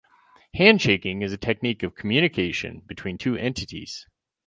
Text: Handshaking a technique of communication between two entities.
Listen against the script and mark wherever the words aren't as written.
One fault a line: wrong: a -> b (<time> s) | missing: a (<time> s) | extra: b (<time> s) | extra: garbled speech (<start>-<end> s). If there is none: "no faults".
extra: is (1.2 s)